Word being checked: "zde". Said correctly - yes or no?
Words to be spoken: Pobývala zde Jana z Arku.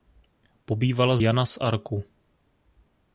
no